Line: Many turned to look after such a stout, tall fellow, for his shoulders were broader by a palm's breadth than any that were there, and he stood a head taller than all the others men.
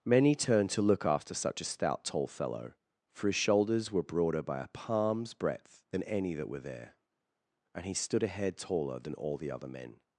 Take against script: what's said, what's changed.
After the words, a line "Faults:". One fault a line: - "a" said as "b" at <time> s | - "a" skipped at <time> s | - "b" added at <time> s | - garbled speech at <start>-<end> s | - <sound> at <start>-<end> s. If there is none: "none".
Many turned to look after such a stout, tall fellow, for his shoulders were broader by a palm's breadth than any that were there, and he stood a head taller than all the other men.
Faults:
- "others" said as "other" at 9.5 s